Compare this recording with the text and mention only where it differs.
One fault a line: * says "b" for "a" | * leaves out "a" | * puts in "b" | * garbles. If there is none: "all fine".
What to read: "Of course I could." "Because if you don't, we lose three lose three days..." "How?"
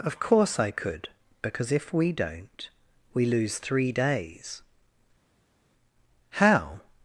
* says "we" for "you"
* leaves out "lose three"